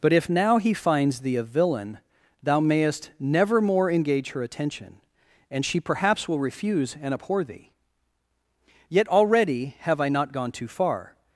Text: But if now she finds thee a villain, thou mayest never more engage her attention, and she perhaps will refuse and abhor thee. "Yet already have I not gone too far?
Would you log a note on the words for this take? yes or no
yes